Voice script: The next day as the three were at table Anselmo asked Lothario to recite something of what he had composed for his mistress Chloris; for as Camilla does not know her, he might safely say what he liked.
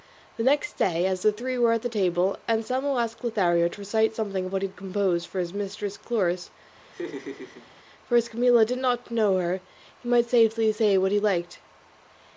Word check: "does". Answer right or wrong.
wrong